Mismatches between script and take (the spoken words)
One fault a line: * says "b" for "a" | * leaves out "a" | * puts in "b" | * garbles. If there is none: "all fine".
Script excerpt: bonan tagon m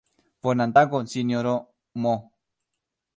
* puts in "sinjoro"